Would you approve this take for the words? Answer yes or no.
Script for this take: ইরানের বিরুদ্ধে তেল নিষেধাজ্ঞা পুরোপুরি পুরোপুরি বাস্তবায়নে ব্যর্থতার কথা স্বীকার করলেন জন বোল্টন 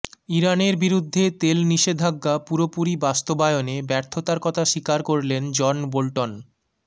no